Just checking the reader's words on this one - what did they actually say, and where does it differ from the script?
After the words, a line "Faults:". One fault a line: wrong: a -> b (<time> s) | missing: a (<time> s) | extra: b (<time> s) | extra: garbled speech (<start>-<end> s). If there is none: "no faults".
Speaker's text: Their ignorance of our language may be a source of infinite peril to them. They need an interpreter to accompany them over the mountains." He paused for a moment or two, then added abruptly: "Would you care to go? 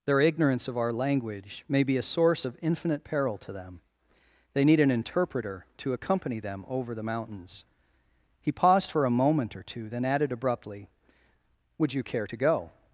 Their ignorance of our language may be a source of infinite peril to them. They need an interpreter to accompany them over the mountains." He paused for a moment or two, then added abruptly: "Would you care to go?
Faults:
no faults